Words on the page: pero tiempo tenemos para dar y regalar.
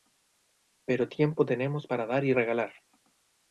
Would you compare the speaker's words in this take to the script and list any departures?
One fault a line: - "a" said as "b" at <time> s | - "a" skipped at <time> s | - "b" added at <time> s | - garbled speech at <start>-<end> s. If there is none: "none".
none